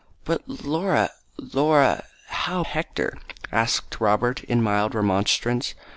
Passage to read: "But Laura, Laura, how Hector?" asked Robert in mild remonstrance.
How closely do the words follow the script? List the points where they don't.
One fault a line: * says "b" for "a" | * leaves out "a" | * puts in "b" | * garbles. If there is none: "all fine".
all fine